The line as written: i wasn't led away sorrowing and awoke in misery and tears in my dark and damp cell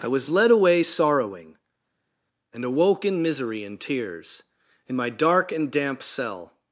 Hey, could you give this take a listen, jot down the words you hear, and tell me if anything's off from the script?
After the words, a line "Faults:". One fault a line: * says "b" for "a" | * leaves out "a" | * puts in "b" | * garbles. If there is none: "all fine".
i was led away sorrowing and awoke in misery and tears in my dark and damp cell
Faults:
* says "was" for "wasn't"